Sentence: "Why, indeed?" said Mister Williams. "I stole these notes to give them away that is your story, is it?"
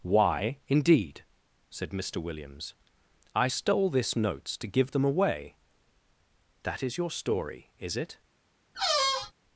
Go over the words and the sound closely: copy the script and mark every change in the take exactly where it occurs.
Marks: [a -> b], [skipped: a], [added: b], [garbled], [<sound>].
"Why, indeed?" said Mister Williams. "I stole [these -> this] notes to give them away that is your story, is it?" [squeak]